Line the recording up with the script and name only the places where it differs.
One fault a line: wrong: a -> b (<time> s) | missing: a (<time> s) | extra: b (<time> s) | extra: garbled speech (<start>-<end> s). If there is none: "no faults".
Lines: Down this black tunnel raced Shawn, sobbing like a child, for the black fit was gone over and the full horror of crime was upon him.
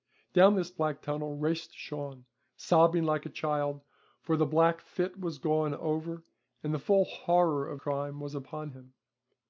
no faults